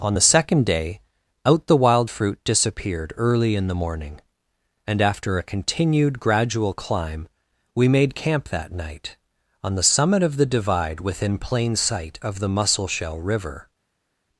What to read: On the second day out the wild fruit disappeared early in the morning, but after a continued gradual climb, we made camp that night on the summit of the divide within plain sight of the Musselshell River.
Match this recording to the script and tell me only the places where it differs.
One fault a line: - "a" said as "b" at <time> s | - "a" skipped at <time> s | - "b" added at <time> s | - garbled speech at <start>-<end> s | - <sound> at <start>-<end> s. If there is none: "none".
- "but" said as "and" at 4.9 s